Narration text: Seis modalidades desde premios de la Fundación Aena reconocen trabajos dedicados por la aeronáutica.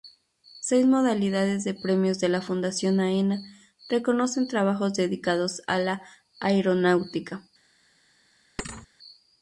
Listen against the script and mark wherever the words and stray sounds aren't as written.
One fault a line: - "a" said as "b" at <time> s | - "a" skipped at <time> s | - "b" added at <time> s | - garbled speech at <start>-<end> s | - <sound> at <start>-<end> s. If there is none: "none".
- "desde" said as "de" at 1.6 s
- "por" said as "a" at 5.7 s
- thud at 8.6-8.9 s